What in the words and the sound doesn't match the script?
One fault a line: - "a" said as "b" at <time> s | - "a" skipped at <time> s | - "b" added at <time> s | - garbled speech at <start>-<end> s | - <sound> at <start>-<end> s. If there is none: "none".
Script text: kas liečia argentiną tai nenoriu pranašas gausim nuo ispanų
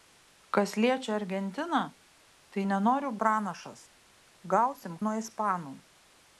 none